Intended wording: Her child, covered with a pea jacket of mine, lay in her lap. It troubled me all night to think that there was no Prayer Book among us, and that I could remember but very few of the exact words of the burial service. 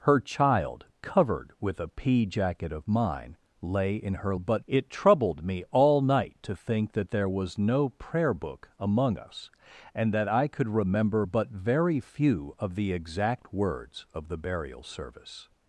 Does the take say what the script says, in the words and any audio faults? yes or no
no